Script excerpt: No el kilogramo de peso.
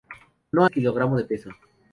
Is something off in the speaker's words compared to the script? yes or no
no